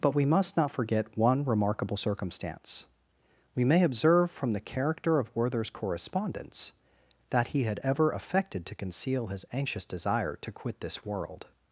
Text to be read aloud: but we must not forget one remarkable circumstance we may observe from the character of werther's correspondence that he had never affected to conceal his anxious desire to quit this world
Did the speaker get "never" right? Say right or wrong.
wrong